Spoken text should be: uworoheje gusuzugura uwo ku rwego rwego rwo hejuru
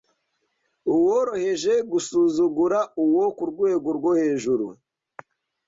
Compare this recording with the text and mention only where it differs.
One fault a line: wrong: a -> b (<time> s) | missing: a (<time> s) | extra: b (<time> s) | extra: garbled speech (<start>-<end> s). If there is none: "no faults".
missing: rwego (3.9 s)